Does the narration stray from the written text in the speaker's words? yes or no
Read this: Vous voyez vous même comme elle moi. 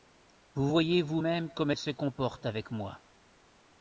yes